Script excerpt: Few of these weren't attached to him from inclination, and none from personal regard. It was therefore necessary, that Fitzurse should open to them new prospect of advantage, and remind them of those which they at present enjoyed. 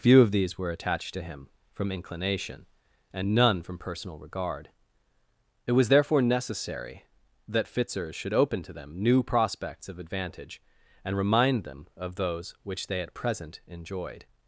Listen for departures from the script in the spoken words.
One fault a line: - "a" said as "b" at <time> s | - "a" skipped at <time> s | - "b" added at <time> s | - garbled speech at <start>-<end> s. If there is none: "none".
- "weren't" said as "were" at 0.6 s
- "prospect" said as "prospects" at 9.2 s